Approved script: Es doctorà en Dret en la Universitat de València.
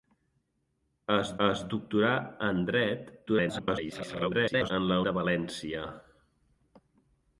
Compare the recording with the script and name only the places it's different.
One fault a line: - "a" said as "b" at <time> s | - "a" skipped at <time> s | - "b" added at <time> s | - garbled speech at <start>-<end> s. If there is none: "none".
- "es" added at 1.5 s
- garbled speech at 3.3-4.7 s
- "Universitat" skipped at 5.0 s